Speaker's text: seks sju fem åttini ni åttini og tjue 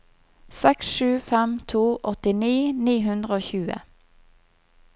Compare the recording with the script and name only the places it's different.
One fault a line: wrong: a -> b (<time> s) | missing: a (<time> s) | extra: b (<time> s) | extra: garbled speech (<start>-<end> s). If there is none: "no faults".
extra: to (1.7 s)
wrong: åttini -> hundre (3.1 s)